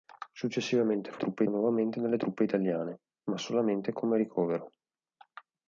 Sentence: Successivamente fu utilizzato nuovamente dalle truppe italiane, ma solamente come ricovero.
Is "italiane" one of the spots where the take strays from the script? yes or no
no